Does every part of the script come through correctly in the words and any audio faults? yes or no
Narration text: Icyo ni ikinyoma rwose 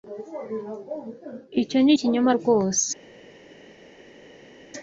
yes